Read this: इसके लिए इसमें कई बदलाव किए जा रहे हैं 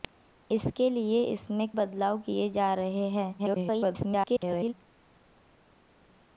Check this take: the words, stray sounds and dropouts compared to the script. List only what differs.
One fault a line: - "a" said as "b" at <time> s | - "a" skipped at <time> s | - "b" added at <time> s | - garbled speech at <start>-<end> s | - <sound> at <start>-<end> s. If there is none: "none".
- "कई" skipped at 1.7 s
- garbled speech at 3.4-4.7 s